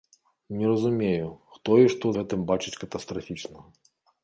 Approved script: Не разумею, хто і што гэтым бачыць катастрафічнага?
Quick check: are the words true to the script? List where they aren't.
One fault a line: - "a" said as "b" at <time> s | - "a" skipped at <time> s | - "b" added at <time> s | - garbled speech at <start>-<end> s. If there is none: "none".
none